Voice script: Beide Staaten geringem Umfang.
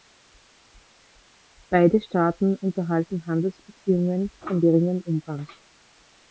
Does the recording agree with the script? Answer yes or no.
no